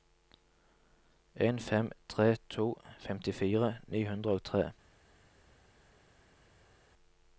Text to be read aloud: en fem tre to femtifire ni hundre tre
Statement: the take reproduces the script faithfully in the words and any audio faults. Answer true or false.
false